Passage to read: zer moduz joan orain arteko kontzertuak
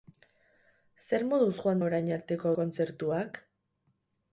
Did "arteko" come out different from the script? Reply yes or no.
no